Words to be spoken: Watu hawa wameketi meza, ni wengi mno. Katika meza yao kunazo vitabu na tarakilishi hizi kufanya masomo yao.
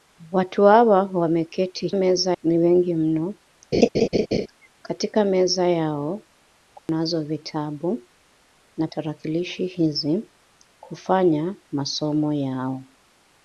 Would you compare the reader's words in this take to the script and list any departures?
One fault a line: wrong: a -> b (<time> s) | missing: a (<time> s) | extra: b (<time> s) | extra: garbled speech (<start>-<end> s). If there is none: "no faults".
no faults